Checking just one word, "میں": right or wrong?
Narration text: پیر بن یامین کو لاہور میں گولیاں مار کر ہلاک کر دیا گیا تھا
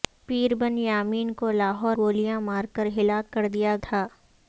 wrong